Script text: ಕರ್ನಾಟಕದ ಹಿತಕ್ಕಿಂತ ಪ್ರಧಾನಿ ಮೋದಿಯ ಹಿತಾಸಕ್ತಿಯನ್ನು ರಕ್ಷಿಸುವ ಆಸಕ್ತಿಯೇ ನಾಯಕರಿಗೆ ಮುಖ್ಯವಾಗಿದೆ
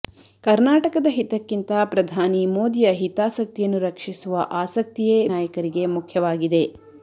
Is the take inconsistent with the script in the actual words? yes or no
no